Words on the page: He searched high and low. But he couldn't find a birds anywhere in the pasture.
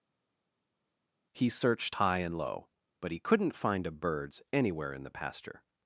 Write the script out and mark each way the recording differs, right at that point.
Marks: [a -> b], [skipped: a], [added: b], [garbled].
He searched high and low. But he couldn't find a birds anywhere in the pasture.